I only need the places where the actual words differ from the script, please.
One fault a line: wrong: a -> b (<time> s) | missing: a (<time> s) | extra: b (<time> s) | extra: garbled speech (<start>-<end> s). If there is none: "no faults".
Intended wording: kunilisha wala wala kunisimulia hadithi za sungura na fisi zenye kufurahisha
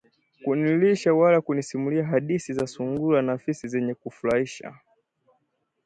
missing: wala (1.4 s)